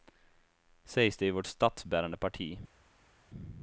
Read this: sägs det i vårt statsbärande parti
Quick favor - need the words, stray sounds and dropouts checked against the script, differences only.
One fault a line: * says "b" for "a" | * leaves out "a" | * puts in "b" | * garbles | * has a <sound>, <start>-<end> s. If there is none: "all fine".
all fine